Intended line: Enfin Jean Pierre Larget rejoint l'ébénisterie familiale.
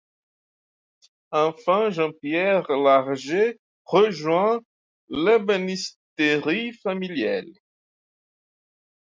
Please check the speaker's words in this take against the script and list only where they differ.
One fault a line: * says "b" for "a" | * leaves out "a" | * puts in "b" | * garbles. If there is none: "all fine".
all fine